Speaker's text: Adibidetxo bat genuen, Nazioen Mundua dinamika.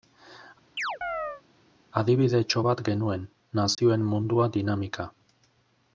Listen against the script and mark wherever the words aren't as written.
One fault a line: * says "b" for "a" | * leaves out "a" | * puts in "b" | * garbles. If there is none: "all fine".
all fine